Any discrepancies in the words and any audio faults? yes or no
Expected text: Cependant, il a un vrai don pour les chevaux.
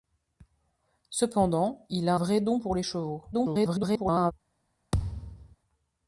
yes